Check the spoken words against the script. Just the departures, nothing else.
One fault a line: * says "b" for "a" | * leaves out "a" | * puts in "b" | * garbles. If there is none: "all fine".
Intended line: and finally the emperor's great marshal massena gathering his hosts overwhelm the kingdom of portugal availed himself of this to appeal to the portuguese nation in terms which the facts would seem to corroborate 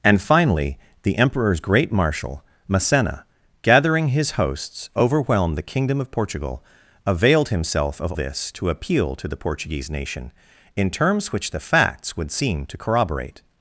all fine